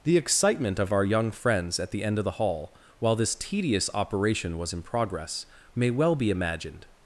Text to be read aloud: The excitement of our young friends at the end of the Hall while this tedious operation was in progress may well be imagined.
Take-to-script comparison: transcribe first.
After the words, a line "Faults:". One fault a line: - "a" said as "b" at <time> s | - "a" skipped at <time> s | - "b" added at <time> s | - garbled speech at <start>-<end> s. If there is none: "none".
The excitement of our young friends at the end of the Hall while this tedious operation was in progress may well be imagined.
Faults:
none